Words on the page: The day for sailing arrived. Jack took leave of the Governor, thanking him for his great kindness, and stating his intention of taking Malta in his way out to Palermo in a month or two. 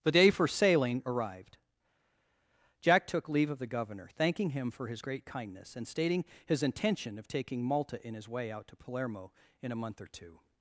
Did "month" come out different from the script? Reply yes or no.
no